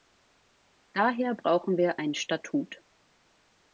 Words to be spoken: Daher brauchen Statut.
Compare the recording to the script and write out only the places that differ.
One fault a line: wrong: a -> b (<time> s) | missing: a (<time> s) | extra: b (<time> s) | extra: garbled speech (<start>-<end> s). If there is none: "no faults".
extra: wir ein (1.8 s)